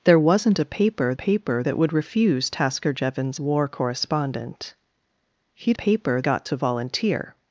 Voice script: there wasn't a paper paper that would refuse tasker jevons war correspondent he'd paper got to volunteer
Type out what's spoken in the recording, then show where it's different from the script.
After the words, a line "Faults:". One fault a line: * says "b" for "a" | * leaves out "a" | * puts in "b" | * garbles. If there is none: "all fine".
there wasn't a paper paper that would refuse tasker jevons war correspondent he'd paper got to volunteer
Faults:
all fine